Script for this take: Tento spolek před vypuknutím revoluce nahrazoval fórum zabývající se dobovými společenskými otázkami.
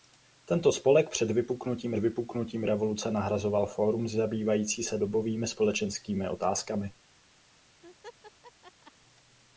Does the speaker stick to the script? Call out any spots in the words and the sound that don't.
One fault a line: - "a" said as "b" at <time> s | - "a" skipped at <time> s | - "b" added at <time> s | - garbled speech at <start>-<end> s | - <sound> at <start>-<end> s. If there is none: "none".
- "vypuknutím" added at 2.0 s
- laugh at 7.8-8.9 s